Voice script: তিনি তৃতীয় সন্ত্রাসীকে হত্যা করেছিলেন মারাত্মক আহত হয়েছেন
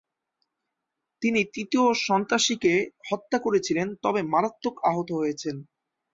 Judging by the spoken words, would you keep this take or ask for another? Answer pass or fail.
fail